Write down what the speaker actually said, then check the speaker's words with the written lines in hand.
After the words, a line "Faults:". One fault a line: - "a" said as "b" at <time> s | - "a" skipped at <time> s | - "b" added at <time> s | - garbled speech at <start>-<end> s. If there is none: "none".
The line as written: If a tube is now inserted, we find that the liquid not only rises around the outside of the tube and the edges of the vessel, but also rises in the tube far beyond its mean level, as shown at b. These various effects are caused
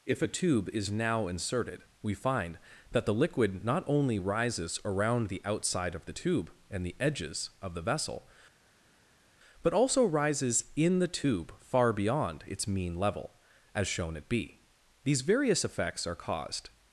If a tube is now inserted, we find that the liquid not only rises around the outside of the tube and the edges of the vessel, but also rises in the tube far beyond its mean level, as shown at b. These various effects are caused
Faults:
none